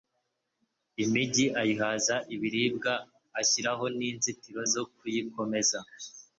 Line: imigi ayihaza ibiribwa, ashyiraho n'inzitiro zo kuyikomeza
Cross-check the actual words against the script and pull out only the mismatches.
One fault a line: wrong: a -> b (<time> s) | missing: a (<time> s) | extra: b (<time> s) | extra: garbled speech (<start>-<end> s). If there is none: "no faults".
no faults